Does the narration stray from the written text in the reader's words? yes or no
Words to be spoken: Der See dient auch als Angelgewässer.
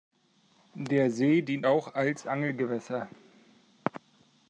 no